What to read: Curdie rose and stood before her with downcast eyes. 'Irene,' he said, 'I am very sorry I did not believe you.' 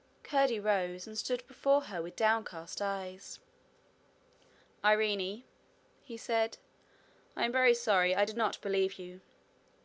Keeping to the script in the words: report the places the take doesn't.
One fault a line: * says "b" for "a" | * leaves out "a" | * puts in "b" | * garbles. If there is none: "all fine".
all fine